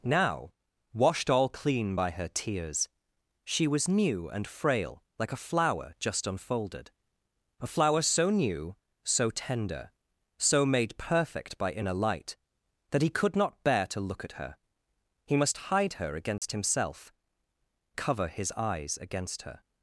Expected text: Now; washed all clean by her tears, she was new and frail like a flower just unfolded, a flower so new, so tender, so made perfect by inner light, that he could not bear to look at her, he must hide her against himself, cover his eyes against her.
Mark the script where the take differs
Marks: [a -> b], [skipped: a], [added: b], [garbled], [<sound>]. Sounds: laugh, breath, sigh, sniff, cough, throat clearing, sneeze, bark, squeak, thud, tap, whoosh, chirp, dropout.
Now; washed all clean by her tears, she was new and frail like a flower just unfolded, a flower so new, so tender, so made perfect by inner light, that he could not bear to look at her, he must hide her against [dropout] himself, cover his eyes against her.